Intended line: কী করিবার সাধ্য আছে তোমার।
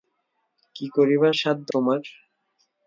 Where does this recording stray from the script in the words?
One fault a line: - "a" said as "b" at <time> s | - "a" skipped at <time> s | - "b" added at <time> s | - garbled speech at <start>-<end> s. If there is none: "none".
- "আছে" skipped at 1.7 s